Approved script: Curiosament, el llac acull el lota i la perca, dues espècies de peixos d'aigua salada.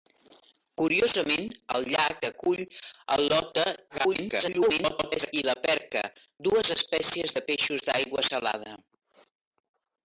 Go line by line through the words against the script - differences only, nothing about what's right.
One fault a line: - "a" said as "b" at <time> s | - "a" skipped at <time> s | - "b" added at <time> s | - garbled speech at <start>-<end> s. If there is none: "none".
- garbled speech at 3.9-5.3 s